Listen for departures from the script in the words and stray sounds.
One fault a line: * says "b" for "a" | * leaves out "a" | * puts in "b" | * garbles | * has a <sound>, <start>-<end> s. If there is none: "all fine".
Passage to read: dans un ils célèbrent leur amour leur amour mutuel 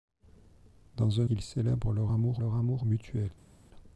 all fine